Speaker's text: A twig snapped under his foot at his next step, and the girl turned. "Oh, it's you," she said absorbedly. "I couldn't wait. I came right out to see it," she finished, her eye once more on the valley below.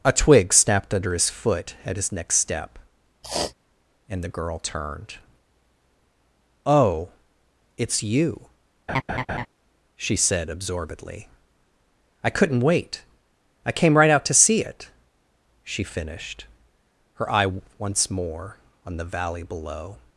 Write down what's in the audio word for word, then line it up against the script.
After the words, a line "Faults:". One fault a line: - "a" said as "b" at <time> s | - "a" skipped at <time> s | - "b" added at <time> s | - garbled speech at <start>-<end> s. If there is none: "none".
A twig snapped under his foot at his next step, and the girl turned. "Oh, it's you," she said absorbedly. "I couldn't wait. I came right out to see it," she finished, her eye once more on the valley below.
Faults:
none